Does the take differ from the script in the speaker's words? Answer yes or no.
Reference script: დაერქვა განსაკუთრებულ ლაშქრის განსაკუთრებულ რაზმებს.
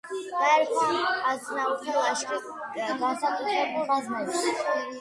yes